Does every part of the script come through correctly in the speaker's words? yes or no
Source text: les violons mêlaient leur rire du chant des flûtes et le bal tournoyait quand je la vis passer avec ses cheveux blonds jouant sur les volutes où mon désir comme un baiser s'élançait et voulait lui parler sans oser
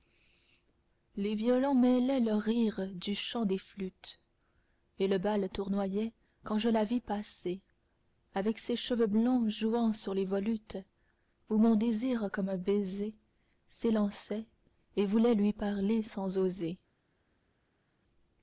yes